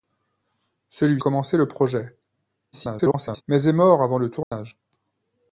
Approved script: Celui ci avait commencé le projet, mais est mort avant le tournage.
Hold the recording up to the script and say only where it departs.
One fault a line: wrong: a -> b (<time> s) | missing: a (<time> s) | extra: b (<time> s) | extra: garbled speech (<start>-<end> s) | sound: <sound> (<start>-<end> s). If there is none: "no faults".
missing: ci avait (1.2 s)
extra: garbled speech (2.7-3.4 s)
sound: dropout (4.4-4.5 s)